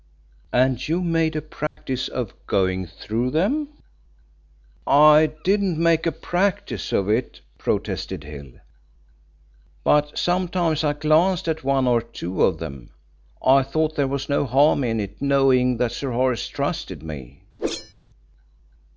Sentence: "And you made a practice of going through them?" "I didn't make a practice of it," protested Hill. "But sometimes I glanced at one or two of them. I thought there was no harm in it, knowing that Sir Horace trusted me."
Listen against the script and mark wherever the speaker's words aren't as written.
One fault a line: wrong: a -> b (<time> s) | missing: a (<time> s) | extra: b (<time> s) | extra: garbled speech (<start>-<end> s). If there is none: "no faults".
no faults